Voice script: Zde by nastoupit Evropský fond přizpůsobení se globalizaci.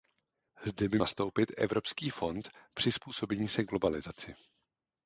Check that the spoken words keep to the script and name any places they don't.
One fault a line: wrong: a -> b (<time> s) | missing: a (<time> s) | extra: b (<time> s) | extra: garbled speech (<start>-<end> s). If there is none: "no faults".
no faults